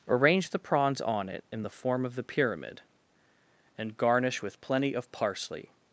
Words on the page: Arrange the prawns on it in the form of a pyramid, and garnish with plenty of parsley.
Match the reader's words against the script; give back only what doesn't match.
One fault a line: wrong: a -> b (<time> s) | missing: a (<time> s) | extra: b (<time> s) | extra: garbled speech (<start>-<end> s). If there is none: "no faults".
wrong: a -> the (2.1 s)